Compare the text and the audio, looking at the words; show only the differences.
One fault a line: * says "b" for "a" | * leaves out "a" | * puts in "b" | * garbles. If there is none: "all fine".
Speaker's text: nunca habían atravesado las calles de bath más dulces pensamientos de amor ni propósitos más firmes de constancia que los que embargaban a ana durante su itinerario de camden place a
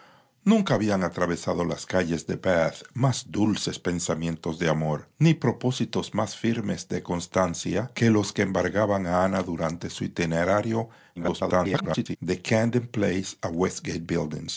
* garbles